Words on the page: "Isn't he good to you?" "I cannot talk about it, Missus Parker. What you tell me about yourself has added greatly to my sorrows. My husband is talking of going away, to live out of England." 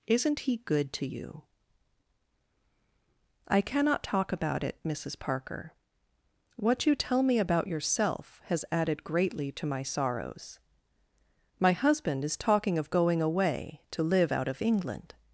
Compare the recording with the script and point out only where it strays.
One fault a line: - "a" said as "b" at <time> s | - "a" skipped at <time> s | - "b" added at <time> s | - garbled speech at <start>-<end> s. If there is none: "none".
none